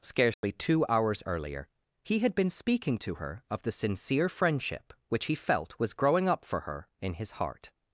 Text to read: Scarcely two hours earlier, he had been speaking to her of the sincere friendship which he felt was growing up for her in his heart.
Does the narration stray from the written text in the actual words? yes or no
no